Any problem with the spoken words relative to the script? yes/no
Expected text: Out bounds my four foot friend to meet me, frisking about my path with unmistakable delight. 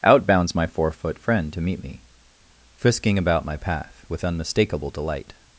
no